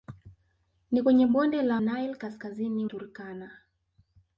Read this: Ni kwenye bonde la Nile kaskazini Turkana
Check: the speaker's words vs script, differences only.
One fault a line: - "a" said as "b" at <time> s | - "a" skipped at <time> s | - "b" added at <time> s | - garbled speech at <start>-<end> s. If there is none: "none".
none